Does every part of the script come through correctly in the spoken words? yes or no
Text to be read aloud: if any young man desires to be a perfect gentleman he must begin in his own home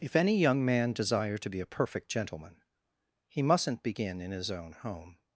no